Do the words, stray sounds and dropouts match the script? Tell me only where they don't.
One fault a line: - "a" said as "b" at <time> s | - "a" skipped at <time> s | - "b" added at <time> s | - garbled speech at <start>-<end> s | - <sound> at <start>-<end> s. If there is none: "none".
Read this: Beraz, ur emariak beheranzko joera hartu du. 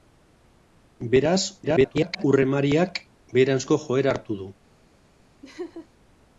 - garbled speech at 1.6-2.2 s
- laugh at 5.4-5.9 s